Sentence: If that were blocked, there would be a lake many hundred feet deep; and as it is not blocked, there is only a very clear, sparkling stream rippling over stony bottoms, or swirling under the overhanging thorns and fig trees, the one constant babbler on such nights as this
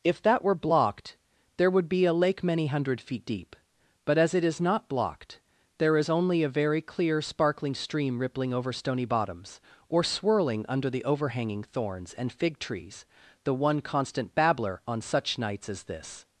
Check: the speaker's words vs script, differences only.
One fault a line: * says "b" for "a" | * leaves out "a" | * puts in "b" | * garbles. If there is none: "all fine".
* says "but" for "and"